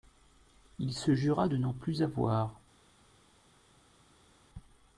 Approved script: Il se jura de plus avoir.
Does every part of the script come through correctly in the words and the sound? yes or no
no